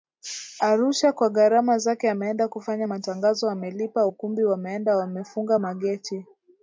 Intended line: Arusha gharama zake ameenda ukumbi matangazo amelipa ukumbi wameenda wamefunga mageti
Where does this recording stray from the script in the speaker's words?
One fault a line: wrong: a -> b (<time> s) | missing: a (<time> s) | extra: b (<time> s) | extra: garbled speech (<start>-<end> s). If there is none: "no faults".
extra: kwa (1.1 s)
wrong: ukumbi -> kufanya (2.5 s)